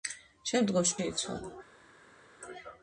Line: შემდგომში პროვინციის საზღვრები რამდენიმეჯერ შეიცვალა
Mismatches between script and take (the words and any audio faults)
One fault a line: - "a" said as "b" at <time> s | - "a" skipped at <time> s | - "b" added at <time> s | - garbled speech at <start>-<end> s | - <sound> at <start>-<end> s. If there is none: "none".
- "პროვინციის საზღვრები რამდენიმეჯერ" skipped at 0.9 s